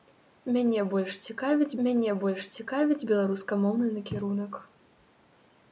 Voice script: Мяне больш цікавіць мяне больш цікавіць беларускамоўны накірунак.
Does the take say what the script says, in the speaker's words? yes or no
yes